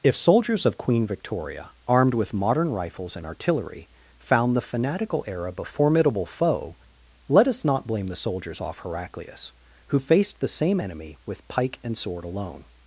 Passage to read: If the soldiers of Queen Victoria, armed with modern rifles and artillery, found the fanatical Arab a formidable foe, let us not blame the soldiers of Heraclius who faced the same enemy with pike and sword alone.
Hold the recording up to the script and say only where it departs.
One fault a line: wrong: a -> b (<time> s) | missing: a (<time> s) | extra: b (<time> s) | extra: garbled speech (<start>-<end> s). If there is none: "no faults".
missing: the (0.1 s)
wrong: of -> off (8.6 s)